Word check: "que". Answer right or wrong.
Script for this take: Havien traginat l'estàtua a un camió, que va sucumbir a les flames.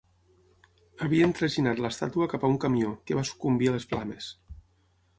right